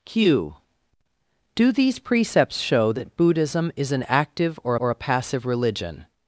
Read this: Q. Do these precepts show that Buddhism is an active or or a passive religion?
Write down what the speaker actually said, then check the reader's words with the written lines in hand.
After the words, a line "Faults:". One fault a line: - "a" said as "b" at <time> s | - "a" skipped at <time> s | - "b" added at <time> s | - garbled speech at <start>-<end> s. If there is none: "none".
Q. Do these precepts show that Buddhism is an active or or a passive religion?
Faults:
none